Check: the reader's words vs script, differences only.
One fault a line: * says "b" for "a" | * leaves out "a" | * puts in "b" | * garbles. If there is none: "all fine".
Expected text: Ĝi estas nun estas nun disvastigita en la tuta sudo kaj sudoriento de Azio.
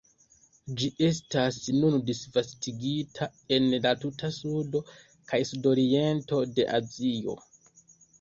* leaves out "estas nun"